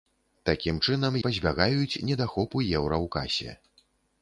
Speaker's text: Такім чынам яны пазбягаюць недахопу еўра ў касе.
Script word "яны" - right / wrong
wrong